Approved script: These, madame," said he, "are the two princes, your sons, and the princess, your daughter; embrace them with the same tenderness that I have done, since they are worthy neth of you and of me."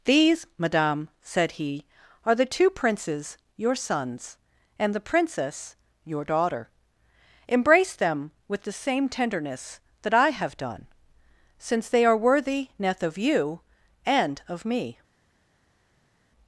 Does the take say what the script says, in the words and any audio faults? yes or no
yes